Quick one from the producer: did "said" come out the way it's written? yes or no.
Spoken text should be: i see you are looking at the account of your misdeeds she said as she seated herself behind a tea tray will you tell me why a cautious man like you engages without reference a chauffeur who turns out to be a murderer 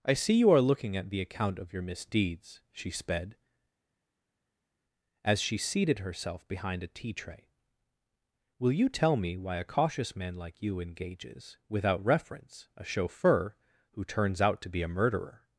no